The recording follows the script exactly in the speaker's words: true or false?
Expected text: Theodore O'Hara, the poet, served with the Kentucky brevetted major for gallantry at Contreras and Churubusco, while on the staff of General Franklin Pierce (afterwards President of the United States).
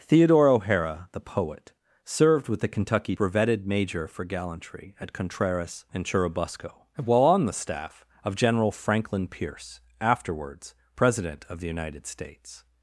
true